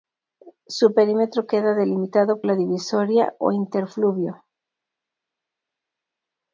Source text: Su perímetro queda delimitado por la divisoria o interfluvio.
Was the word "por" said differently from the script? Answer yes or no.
yes